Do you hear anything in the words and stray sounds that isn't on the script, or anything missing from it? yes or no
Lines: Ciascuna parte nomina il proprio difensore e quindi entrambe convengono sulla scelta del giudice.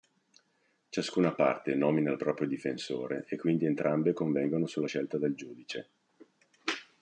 no